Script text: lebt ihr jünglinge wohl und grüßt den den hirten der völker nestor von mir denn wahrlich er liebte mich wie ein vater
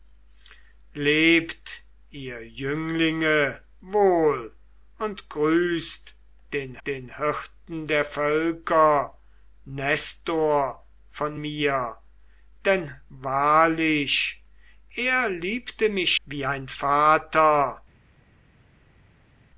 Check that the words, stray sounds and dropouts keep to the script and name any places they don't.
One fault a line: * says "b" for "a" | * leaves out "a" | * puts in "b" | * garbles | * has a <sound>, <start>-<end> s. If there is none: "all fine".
all fine